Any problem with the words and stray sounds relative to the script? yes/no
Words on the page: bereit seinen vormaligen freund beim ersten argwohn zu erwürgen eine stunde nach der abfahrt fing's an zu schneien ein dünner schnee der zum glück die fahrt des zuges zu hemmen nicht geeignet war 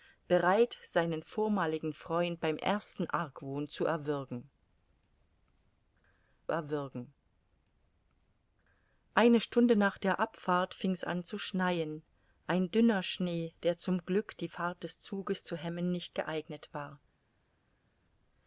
yes